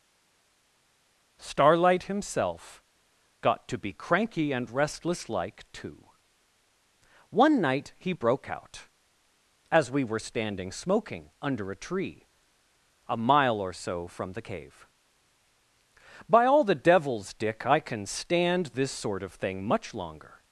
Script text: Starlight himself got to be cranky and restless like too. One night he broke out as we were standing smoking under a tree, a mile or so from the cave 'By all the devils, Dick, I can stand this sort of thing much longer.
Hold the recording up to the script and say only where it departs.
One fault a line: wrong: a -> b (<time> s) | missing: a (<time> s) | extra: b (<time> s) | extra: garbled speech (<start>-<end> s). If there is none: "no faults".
no faults